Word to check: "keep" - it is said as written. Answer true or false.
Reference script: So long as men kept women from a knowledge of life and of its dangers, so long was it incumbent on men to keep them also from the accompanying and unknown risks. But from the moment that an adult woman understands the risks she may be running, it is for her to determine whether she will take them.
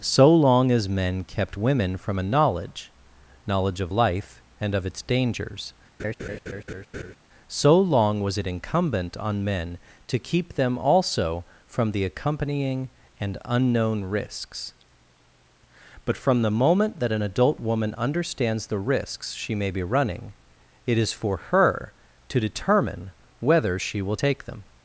true